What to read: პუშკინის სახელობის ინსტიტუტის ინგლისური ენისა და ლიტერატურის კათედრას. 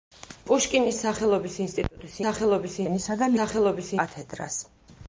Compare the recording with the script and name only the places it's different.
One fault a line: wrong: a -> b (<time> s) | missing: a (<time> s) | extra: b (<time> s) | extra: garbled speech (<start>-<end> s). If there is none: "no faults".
wrong: ინგლისური -> სახელობის (2.2 s)
wrong: ლიტერატურის -> სახელობის (3.4 s)